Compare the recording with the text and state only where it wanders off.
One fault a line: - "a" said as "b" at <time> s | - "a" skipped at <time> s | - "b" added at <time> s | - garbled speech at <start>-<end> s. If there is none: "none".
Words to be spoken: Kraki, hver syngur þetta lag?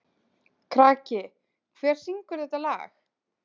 none